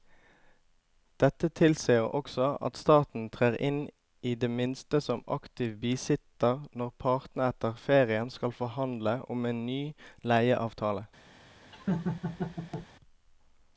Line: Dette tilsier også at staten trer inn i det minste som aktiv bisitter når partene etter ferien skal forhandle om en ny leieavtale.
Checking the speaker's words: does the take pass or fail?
pass